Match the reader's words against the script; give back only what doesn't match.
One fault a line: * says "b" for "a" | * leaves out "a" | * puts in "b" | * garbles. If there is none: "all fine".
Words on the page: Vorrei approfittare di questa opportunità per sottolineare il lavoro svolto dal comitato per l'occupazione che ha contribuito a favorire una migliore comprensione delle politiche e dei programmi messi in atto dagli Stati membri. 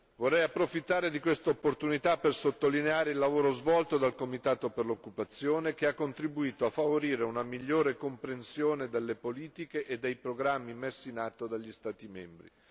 all fine